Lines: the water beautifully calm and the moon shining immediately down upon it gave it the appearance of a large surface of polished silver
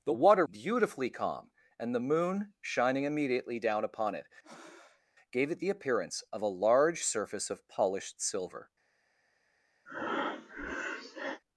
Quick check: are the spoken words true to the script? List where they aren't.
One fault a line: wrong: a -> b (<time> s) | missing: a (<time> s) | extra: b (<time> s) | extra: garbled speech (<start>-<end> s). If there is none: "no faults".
no faults